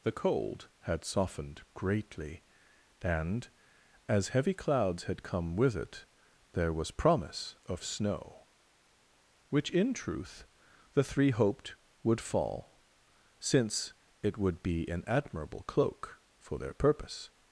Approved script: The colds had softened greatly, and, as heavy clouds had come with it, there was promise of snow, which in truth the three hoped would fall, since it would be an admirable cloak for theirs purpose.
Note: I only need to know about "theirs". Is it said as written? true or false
false